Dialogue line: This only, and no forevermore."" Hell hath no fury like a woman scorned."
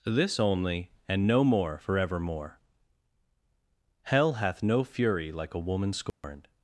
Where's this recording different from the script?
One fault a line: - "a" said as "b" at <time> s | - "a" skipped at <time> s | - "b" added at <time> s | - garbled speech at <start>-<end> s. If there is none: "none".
- "more" added at 1.4 s